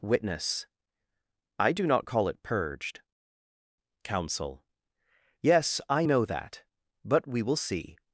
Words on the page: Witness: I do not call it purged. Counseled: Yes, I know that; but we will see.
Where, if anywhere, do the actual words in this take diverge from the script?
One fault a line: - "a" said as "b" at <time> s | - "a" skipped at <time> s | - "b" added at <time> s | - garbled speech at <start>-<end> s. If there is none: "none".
- "Counseled" said as "Counsel" at 4.0 s